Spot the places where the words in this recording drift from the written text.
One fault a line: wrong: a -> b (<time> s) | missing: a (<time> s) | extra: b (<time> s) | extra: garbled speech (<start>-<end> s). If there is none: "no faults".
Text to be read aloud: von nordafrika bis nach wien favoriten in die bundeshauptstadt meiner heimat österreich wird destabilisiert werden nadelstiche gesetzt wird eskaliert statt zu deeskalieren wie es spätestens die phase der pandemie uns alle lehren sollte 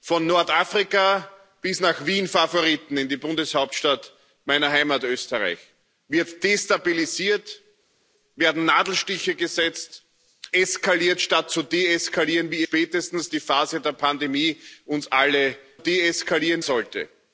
missing: wird (10.0 s)
missing: es (12.7 s)
wrong: lehren -> deeskalieren (15.8 s)